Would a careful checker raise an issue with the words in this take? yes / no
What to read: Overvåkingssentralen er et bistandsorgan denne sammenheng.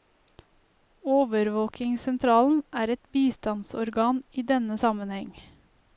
yes